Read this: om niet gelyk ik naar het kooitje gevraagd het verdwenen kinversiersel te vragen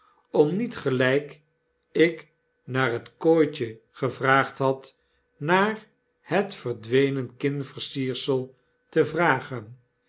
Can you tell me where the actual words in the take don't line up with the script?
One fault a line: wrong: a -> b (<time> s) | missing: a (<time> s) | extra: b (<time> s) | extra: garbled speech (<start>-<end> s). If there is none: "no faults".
extra: had naar (4.6 s)